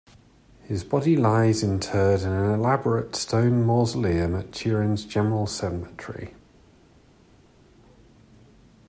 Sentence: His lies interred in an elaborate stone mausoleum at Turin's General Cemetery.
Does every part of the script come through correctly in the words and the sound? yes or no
no